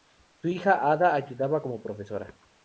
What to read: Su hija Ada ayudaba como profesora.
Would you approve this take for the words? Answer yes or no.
yes